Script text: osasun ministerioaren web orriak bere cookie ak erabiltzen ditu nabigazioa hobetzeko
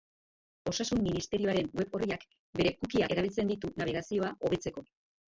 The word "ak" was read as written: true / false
false